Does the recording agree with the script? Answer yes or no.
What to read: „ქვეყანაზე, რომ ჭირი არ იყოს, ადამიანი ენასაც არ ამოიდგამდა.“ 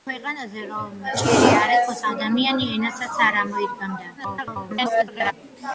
no